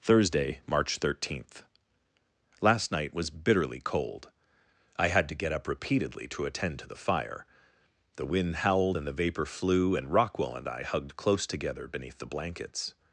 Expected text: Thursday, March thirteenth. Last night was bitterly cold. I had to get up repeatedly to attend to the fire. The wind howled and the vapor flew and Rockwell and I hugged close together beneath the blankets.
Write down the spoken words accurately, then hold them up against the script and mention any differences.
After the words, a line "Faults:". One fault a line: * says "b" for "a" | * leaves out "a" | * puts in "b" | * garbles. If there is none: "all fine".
Thursday, March thirteenth. Last night was bitterly cold. I had to get up repeatedly to attend to the fire. The wind howled and the vapor flew and Rockwell and I hugged close together beneath the blankets.
Faults:
all fine